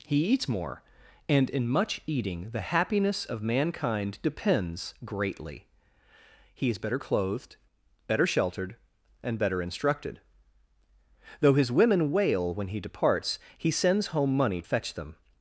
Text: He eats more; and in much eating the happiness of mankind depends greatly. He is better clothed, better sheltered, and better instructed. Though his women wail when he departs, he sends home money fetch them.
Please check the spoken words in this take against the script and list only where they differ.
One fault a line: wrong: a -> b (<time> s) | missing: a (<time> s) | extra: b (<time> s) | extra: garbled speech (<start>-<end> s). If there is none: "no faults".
no faults